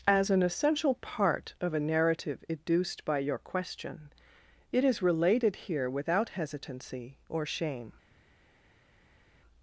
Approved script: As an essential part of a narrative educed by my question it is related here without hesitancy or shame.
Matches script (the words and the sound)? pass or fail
fail